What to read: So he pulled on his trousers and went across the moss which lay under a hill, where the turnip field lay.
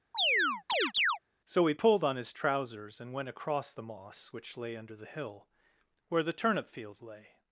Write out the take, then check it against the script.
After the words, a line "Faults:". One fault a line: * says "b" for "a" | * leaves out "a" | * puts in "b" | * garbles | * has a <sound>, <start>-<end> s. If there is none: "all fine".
So he pulled on his trousers and went across the moss which lay under the hill, where the turnip field lay.
Faults:
* has a chirp, 0.1-1.2 s
* says "the" for "a"